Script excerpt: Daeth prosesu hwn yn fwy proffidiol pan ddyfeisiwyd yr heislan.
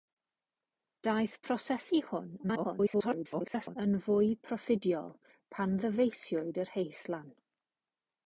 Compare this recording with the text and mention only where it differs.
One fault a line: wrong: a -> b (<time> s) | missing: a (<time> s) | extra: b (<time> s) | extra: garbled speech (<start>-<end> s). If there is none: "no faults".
extra: garbled speech (2.4-3.8 s)